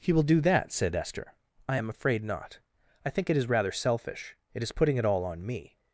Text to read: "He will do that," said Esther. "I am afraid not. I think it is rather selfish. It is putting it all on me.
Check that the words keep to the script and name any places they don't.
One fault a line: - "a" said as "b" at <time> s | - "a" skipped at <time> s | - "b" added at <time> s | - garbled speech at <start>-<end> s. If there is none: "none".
none